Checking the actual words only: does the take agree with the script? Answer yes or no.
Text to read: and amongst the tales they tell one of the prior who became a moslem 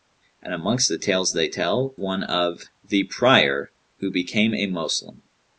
yes